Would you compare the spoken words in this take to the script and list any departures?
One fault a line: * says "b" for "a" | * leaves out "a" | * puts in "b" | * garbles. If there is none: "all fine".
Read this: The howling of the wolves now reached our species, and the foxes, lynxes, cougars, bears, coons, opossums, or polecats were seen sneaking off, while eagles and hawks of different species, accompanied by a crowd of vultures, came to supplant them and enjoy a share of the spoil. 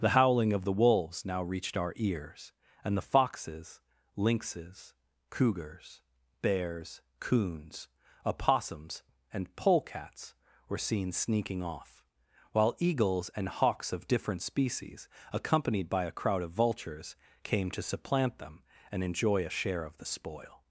* says "ears" for "species"
* says "and" for "or"